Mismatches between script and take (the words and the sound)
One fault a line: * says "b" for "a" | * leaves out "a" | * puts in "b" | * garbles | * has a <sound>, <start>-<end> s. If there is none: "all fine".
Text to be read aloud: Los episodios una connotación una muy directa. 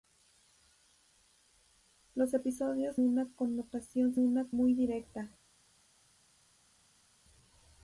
all fine